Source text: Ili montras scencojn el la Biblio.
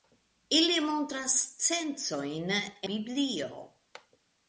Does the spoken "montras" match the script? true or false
true